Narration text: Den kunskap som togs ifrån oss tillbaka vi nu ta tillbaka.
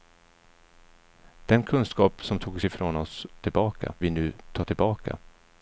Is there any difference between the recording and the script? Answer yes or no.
no